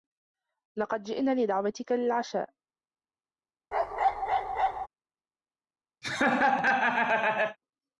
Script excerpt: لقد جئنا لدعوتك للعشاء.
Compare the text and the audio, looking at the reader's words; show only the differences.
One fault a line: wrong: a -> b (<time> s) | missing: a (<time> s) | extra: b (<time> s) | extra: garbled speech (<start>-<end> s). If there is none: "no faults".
no faults